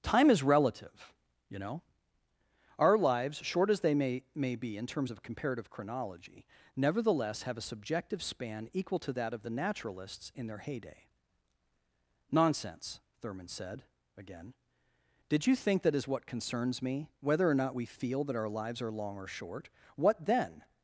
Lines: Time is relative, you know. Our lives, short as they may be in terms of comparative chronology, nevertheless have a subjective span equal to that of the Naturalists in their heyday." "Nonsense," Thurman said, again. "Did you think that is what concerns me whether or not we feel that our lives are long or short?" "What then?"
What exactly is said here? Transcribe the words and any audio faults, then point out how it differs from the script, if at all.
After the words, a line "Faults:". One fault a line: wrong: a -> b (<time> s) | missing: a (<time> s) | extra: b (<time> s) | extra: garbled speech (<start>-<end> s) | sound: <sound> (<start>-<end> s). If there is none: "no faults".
Time is relative, you know. Our lives, short as they may may be in terms of comparative chronology, nevertheless have a subjective span equal to that of the Naturalists in their heyday." "Nonsense," Thurman said, again. "Did you think that is what concerns me whether or not we feel that our lives are long or short?" "What then?"
Faults:
extra: may (4.3 s)